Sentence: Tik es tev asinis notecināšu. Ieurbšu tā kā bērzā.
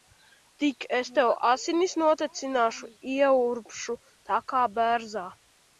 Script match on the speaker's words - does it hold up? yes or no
yes